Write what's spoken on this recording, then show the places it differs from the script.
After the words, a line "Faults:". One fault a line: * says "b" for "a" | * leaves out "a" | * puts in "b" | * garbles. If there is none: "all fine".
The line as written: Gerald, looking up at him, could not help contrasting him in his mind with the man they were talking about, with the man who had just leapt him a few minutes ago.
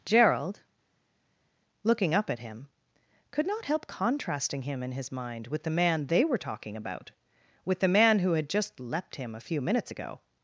Gerald, looking up at him, could not help contrasting him in his mind with the man they were talking about, with the man who had just leapt him a few minutes ago.
Faults:
all fine